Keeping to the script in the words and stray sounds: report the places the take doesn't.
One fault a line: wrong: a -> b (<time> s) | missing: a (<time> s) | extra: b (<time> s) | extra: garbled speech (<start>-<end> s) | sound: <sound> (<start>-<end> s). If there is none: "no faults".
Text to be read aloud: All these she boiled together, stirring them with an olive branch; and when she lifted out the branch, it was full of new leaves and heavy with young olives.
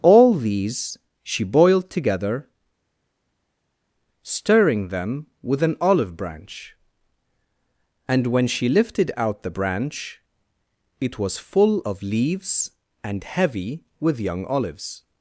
missing: new (12.0 s)